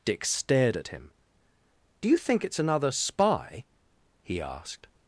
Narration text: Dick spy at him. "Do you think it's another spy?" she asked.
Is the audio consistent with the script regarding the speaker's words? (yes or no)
no